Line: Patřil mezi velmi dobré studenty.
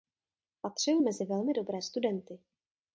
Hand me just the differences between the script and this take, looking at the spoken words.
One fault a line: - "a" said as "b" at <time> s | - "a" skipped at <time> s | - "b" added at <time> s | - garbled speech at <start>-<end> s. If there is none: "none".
none